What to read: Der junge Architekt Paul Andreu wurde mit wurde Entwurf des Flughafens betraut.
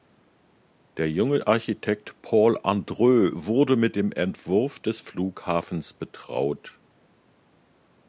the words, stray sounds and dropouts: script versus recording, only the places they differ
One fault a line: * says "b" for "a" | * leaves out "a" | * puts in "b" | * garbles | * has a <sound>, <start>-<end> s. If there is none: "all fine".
* says "dem" for "wurde"